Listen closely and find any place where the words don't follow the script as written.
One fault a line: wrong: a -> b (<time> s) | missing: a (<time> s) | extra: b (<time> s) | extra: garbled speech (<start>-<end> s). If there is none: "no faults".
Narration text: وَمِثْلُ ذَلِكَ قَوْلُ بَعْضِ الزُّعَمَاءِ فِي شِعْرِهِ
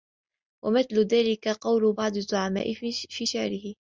no faults